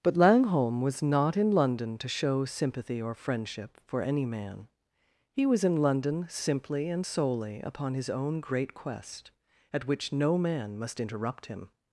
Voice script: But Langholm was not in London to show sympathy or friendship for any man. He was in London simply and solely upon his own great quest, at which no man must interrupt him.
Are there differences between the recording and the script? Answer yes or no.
no